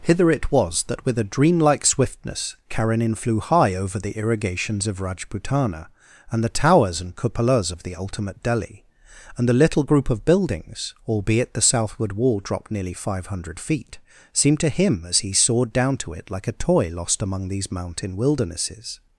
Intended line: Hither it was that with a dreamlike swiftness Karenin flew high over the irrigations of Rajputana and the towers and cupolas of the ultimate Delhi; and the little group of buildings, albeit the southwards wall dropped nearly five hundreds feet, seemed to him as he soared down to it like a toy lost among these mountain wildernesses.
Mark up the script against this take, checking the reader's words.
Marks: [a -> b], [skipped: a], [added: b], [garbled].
Hither it was that with a dreamlike swiftness Karenin flew high over the irrigations of Rajputana and the towers and cupolas of the ultimate Delhi; and the little group of buildings, albeit the [southwards -> southward] wall dropped nearly five [hundreds -> hundred] feet, seemed to him as he soared down to it like a toy lost among these mountain wildernesses.